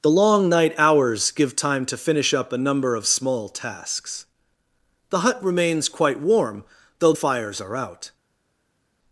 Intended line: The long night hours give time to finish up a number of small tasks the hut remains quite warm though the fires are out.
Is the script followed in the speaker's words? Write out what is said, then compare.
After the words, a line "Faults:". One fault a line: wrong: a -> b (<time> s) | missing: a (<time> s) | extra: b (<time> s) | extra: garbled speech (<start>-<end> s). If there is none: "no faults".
The long night hours give time to finish up a number of small tasks the hut remains quite warm though fires are out.
Faults:
missing: the (7.1 s)